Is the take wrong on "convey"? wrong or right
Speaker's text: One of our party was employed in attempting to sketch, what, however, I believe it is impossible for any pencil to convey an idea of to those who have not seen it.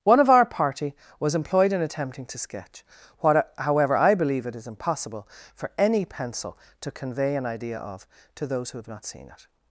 right